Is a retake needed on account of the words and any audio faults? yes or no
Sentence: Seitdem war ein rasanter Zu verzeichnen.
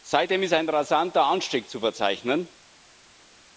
yes